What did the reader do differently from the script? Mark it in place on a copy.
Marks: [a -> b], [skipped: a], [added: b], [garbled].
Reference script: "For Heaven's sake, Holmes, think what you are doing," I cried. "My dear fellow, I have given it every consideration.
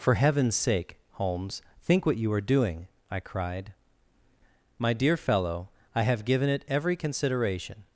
"For Heaven's sake, Holmes, think what you are doing," I cried. "My dear fellow, I have given it every consideration.